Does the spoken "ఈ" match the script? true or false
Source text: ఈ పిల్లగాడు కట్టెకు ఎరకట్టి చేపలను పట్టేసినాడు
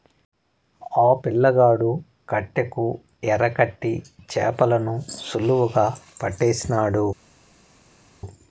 false